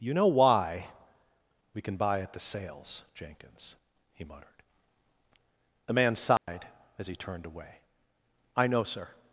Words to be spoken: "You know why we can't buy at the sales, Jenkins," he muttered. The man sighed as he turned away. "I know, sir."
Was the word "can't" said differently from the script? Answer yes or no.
yes